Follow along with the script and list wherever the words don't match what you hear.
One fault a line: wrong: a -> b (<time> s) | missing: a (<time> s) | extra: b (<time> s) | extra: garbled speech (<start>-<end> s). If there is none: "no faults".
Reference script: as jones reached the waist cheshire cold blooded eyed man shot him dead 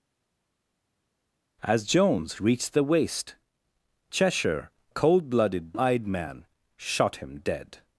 no faults